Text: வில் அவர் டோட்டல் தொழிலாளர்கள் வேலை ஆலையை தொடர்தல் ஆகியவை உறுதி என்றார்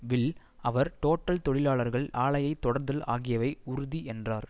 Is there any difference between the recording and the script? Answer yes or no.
yes